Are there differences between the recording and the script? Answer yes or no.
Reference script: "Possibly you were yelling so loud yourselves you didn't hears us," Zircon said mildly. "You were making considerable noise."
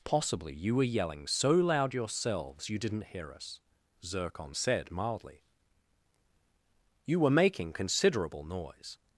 yes